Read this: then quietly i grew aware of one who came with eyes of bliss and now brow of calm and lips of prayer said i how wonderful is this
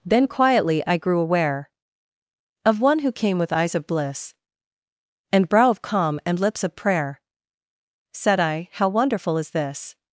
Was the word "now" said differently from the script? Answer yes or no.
yes